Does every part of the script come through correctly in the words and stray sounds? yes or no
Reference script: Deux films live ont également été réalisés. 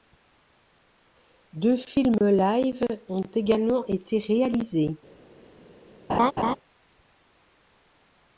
no